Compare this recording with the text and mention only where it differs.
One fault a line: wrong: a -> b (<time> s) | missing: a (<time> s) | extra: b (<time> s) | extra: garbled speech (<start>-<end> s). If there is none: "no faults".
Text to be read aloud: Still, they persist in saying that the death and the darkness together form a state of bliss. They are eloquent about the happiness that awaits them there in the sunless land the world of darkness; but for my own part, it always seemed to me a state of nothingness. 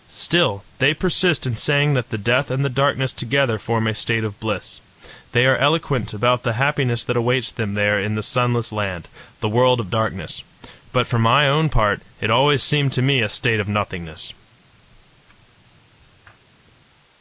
no faults